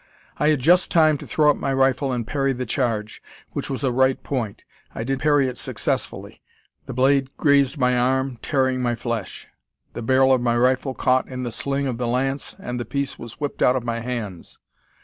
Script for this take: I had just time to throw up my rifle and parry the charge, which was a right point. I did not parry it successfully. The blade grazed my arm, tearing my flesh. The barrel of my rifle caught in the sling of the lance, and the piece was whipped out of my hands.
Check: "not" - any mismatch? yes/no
yes